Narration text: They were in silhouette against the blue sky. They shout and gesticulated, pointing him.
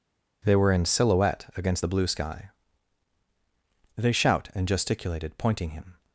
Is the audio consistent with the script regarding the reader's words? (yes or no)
yes